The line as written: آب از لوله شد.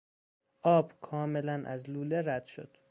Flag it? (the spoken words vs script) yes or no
yes